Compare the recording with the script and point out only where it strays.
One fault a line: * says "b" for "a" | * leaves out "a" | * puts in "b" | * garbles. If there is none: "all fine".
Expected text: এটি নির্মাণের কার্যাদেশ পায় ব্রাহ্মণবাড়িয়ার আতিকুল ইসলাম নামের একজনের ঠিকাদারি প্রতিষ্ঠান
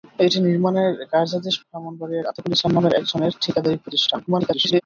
* leaves out "পায়"
* garbles